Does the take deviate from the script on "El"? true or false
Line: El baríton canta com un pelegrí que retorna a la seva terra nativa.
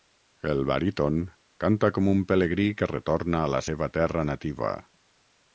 false